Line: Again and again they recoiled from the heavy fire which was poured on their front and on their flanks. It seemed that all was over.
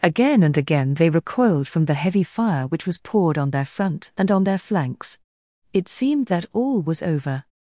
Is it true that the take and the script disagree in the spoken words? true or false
false